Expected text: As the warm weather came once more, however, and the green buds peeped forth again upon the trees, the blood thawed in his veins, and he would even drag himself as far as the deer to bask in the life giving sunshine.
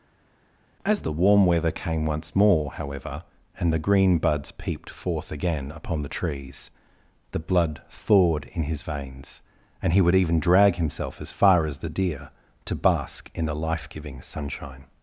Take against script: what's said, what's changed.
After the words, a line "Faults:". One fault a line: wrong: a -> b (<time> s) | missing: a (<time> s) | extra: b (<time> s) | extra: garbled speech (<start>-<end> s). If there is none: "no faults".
As the warm weather came once more, however, and the green buds peeped forth again upon the trees, the blood thawed in his veins, and he would even drag himself as far as the deer to bask in the life giving sunshine.
Faults:
no faults